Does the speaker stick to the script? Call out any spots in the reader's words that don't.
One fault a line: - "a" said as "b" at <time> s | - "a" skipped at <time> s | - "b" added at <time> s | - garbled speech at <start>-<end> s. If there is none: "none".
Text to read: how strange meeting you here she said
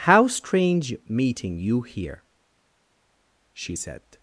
none